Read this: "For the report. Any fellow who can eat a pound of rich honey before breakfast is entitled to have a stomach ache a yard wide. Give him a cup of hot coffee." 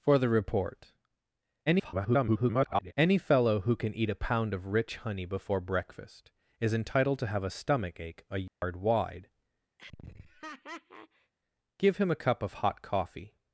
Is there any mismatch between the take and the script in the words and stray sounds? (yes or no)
yes